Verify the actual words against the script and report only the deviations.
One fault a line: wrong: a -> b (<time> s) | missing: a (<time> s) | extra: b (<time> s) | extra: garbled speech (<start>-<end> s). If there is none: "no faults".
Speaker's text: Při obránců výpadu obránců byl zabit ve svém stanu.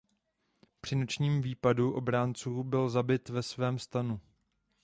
wrong: obránců -> nočním (0.9 s)